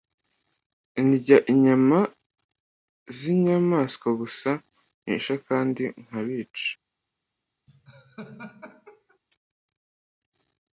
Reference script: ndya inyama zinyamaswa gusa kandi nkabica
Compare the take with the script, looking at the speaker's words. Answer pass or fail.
fail